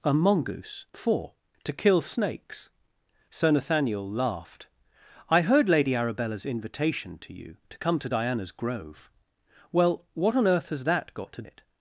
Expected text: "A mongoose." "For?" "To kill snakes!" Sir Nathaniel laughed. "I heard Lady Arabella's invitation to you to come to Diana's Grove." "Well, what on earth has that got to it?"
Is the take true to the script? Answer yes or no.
yes